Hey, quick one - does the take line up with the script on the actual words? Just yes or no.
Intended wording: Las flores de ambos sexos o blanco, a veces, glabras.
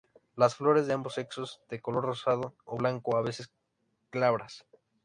no